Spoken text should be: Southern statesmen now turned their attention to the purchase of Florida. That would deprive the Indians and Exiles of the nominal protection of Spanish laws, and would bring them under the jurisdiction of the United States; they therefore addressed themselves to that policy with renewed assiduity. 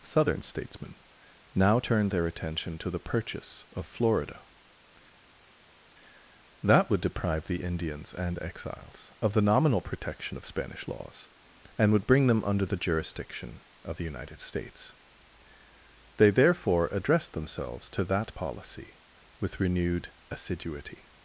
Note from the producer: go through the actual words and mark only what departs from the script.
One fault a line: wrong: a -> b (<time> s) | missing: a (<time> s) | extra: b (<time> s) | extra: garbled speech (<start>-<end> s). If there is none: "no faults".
no faults